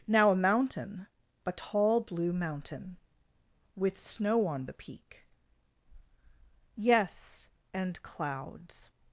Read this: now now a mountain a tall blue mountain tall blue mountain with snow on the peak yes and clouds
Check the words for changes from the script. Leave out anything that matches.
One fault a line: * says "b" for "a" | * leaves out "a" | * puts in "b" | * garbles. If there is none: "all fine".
* leaves out "now"
* leaves out "tall blue mountain"